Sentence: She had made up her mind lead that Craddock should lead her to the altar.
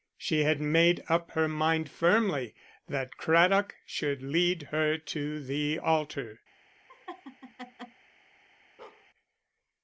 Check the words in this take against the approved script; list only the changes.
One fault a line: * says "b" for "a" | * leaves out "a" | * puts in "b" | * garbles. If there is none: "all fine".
* says "firmly" for "lead"